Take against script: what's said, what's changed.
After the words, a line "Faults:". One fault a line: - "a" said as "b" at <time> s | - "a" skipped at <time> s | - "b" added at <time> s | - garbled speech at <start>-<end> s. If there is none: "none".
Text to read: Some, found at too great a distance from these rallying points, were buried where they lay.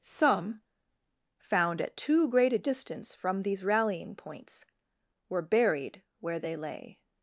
Some, found at too great a distance from these rallying points, were buried where they lay.
Faults:
none